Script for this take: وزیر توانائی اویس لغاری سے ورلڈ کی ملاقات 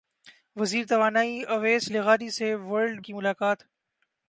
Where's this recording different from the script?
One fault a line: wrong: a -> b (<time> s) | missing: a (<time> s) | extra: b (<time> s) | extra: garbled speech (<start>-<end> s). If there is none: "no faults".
no faults